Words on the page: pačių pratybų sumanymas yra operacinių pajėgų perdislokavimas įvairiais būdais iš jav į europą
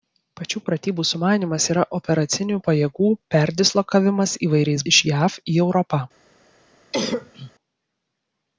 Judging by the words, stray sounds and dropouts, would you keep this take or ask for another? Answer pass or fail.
fail